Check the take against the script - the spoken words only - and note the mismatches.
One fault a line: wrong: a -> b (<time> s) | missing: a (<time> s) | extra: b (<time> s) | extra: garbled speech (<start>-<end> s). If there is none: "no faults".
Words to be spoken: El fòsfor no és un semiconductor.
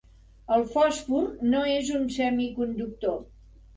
no faults